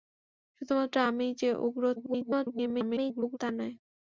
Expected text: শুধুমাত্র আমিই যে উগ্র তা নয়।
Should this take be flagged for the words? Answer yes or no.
yes